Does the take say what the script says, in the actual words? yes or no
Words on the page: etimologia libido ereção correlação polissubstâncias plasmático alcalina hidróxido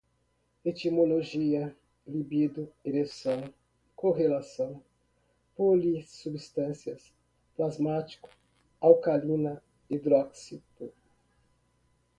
yes